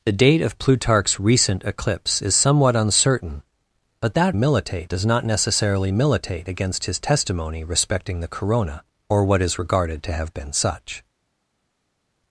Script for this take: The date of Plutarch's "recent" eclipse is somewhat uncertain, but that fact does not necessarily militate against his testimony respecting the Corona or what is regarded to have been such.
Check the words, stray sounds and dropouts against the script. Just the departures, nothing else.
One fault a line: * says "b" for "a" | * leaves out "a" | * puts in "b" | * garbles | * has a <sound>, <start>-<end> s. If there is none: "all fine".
* says "militate" for "fact"